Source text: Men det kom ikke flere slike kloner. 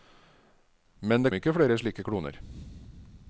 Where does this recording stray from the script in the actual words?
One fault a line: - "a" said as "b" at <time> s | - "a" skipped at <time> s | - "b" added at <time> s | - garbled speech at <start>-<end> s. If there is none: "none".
- "kom" skipped at 1.3 s